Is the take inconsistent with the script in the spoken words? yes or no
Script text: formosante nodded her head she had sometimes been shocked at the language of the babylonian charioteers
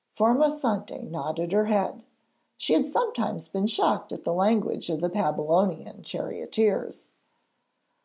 no